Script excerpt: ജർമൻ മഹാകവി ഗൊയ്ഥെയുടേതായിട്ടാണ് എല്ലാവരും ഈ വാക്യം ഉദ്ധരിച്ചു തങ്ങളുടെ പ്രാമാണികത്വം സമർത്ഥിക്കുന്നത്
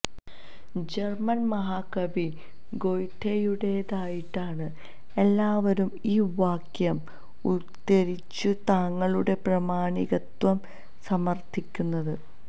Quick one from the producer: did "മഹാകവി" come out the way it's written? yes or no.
yes